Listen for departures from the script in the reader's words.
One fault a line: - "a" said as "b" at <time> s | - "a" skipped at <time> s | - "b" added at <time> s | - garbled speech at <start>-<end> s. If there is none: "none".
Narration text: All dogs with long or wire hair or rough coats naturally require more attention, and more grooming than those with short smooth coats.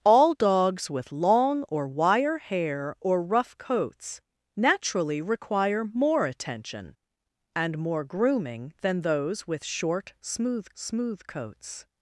- "smooth" added at 10.7 s